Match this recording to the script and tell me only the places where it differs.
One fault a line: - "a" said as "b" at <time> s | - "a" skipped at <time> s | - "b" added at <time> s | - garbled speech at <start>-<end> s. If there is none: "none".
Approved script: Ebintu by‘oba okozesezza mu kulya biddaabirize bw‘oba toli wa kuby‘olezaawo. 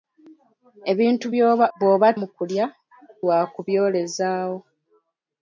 - "okozesezza" said as "bw‘oba" at 1.8 s
- "biddaabirize bw‘oba toli" skipped at 2.6 s